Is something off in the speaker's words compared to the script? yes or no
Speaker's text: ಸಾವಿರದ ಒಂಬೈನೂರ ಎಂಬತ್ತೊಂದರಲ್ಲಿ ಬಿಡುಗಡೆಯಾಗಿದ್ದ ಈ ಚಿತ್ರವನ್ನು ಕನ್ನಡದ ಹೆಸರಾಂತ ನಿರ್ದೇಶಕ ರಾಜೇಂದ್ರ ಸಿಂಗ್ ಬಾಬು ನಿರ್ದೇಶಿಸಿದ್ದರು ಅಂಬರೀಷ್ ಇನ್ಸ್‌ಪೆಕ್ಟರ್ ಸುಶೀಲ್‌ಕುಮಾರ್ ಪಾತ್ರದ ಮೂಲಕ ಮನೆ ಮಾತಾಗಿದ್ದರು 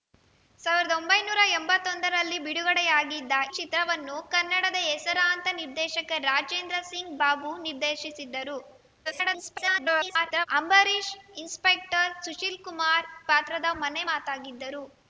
yes